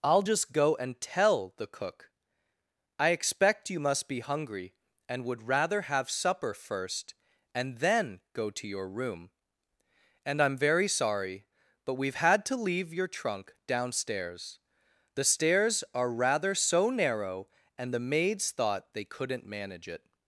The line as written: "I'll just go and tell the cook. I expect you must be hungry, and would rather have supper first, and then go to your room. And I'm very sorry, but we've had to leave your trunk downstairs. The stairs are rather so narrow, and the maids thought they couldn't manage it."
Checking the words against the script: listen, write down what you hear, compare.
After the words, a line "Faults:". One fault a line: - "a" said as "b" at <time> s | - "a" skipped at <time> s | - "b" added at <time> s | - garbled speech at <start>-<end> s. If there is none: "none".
"I'll just go and tell the cook. I expect you must be hungry, and would rather have supper first, and then go to your room. And I'm very sorry, but we've had to leave your trunk downstairs. The stairs are rather so narrow, and the maids thought they couldn't manage it."
Faults:
none